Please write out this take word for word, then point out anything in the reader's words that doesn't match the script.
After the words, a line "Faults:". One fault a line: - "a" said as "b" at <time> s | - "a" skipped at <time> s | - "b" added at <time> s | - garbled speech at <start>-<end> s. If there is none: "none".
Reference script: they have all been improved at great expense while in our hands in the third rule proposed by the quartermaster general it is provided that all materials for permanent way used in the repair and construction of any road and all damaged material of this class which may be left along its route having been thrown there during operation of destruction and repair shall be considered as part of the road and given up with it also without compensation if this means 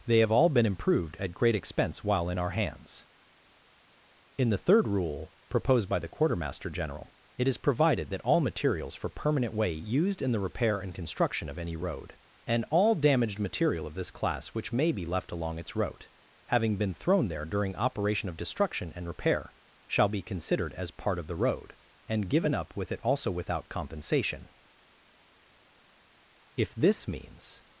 they have all been improved at great expense while in our hands in the third rule proposed by the quartermaster general it is provided that all materials for permanent way used in the repair and construction of any road and all damaged material of this class which may be left along its route having been thrown there during operation of destruction and repair shall be considered as part of the road and given up with it also without compensation if this means
Faults:
none